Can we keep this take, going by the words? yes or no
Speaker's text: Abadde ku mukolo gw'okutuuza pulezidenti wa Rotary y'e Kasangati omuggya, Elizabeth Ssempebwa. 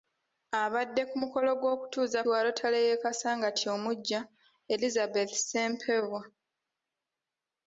no